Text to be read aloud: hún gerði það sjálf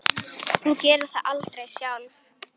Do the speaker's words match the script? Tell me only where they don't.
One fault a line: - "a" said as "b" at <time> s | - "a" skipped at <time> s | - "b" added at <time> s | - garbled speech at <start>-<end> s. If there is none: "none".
- "aldrei" added at 1.3 s